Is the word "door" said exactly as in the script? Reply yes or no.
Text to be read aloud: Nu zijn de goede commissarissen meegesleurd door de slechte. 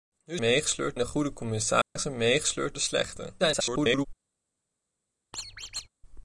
no